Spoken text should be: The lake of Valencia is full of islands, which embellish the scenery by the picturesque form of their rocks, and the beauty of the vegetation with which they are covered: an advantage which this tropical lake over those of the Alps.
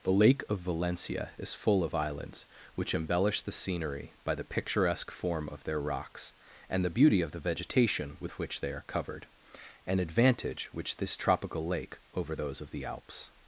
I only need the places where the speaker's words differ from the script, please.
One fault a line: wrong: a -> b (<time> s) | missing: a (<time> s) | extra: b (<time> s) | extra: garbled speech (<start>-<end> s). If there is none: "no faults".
no faults